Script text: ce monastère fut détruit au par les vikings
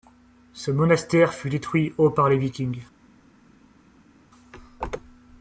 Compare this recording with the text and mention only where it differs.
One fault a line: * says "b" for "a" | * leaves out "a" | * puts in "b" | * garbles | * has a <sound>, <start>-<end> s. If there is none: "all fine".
all fine